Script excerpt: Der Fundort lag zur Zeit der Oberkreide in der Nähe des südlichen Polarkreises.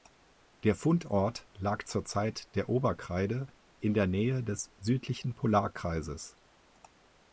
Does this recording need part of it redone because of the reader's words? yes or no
no